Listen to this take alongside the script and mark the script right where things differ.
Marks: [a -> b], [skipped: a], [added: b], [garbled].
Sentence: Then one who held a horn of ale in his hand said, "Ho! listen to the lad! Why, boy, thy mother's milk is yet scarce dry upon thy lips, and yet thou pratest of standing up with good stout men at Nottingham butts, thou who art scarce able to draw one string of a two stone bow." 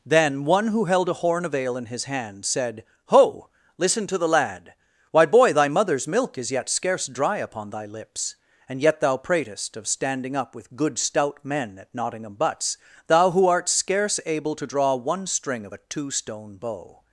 Then one who held a horn of ale in his hand said, "Ho! listen to the lad! Why, boy, thy mother's milk is yet scarce dry upon thy lips, and yet thou pratest of standing up with good stout men at Nottingham butts, thou who art scarce able to draw one string of a two stone bow."